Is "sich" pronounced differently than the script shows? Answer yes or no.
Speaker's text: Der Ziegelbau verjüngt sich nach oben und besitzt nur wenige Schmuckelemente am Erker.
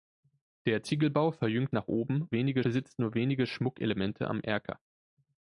yes